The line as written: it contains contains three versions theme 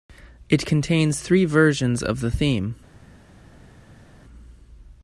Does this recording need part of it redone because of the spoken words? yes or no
yes